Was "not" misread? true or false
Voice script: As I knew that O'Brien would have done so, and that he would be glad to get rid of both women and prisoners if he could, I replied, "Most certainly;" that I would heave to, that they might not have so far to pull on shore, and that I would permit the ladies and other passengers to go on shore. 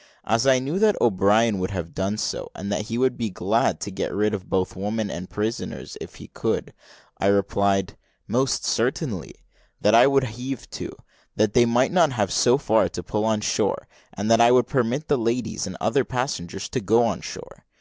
false